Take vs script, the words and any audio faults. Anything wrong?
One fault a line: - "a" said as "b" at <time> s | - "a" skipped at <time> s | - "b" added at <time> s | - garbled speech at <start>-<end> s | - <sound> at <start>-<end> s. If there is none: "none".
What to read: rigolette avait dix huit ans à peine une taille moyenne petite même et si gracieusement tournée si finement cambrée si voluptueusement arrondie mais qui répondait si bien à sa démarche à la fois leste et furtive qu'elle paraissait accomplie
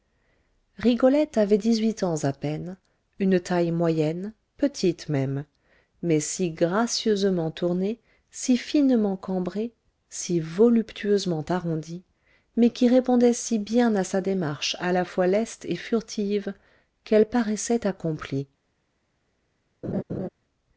- "et" said as "mais" at 6.0 s
- laugh at 19.8-20.3 s